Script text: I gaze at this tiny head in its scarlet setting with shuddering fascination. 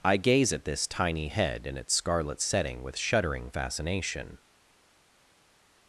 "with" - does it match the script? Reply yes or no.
yes